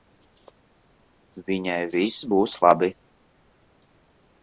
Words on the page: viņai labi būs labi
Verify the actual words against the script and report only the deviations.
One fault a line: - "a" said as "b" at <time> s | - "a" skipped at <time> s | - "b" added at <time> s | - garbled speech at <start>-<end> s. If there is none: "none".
- "labi" said as "viss" at 2.0 s